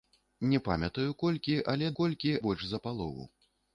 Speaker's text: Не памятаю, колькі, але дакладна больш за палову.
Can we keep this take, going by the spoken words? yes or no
no